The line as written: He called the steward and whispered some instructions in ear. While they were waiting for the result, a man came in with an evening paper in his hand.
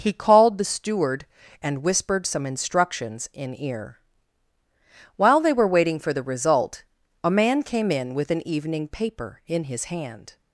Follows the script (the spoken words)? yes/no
yes